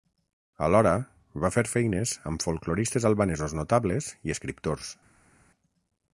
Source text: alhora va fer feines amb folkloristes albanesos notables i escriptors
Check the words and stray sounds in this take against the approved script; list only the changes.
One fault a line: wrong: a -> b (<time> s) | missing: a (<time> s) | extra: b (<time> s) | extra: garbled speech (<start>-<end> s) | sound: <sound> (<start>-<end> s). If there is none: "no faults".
no faults